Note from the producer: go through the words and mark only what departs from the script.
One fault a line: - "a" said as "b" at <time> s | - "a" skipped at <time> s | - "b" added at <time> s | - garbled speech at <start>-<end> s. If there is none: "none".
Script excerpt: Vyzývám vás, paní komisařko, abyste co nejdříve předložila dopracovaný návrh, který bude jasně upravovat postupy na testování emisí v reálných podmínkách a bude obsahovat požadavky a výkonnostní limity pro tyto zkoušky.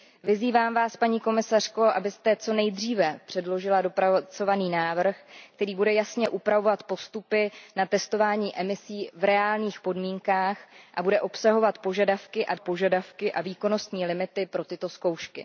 - "požadavky a" added at 12.6 s